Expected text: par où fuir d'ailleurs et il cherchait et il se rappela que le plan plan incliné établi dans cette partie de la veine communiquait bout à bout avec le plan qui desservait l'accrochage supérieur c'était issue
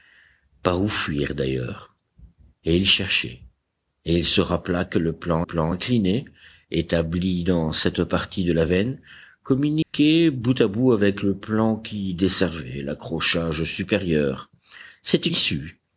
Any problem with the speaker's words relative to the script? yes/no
no